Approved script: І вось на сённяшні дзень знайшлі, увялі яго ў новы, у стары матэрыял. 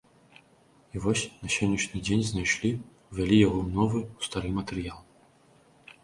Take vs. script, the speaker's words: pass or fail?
pass